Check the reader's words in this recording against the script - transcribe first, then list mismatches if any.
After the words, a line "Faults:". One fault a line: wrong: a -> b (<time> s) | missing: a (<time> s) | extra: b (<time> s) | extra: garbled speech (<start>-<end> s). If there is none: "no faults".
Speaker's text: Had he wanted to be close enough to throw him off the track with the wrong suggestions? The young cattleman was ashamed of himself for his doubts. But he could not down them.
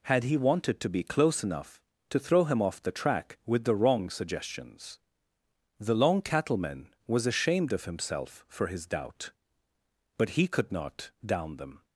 Had he wanted to be close enough to throw him off the track with the wrong suggestions? The long cattleman was ashamed of himself for his doubt. But he could not down them.
Faults:
wrong: young -> long (6.0 s)
wrong: doubts -> doubt (8.8 s)